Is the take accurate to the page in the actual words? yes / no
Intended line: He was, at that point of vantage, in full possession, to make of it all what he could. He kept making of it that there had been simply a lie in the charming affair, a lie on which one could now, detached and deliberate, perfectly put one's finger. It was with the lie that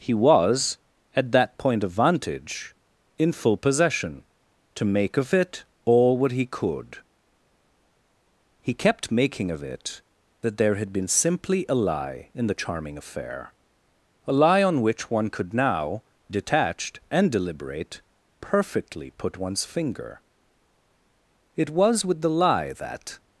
yes